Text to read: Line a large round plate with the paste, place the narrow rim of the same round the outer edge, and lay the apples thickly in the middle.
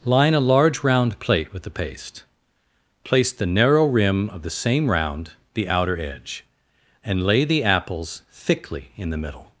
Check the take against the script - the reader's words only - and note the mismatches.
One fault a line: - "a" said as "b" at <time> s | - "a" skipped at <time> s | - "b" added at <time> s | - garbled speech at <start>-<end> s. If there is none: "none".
none